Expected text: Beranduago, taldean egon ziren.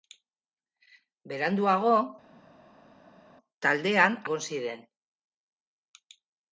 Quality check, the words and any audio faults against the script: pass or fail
pass